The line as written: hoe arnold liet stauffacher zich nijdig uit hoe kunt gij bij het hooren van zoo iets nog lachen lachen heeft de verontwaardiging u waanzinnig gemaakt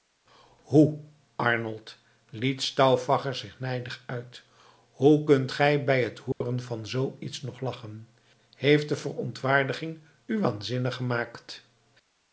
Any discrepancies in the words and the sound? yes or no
yes